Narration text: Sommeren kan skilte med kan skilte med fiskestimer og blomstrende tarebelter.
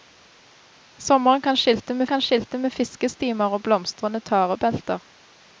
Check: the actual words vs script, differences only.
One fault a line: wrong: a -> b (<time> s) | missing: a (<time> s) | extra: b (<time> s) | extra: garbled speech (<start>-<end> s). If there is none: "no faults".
no faults